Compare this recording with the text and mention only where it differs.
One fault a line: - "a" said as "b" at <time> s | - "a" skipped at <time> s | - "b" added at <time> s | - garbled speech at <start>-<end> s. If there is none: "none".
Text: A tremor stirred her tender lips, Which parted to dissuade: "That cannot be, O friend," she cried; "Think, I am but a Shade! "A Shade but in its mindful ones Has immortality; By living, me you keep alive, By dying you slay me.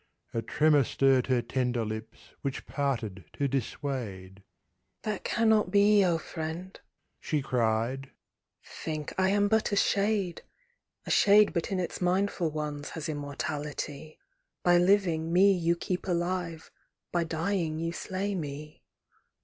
none